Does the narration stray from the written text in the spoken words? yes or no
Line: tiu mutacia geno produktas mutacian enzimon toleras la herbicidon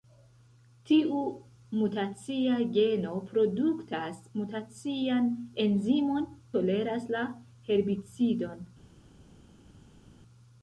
no